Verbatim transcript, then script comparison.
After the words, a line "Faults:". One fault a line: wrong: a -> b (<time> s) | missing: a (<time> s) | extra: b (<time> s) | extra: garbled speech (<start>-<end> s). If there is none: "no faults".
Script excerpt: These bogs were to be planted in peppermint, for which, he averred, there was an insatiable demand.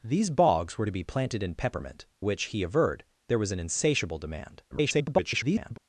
These bogs were to be planted in peppermint, which, he averred, there was an insatiable demand. [garbled]
Faults:
missing: for (2.0 s)
extra: garbled speech (4.7-5.8 s)